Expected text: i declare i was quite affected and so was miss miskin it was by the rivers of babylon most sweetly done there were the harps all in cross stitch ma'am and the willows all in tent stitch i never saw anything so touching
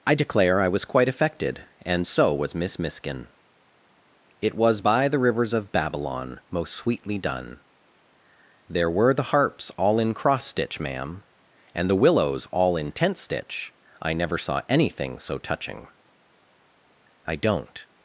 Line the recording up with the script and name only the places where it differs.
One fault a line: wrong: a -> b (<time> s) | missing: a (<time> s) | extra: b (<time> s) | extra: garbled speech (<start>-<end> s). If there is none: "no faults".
extra: i don't (17.3 s)